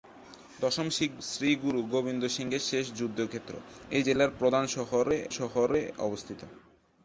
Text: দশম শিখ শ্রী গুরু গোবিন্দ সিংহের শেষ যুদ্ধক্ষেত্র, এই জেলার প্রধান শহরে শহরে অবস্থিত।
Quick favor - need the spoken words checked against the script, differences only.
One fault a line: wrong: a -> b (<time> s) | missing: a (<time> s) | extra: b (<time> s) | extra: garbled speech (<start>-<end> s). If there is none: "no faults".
no faults